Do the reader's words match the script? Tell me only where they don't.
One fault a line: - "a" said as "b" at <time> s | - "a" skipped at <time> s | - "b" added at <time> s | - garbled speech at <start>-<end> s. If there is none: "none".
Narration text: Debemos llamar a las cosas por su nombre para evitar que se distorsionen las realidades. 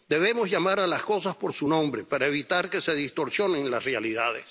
none